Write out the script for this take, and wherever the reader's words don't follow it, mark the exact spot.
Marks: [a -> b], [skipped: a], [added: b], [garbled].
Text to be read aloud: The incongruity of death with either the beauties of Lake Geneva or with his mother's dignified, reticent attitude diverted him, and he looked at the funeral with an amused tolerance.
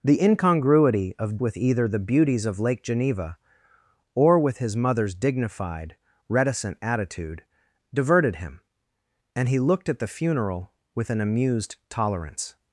The incongruity of [skipped: death] with either the beauties of Lake Geneva or with his mother's dignified, reticent attitude diverted him, and he looked at the funeral with an amused tolerance.